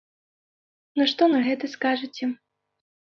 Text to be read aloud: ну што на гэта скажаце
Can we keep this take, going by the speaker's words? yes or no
yes